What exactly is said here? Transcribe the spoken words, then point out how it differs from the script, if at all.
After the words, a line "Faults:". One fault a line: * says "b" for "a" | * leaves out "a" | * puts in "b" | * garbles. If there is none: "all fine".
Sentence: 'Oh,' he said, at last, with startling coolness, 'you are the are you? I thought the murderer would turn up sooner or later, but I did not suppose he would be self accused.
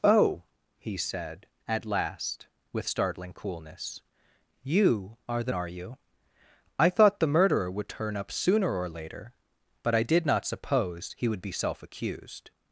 'Oh,' he said, at last, with startling coolness, 'you are the are you? I thought the murderer would turn up sooner or later, but I did not suppose he would be self accused.
Faults:
all fine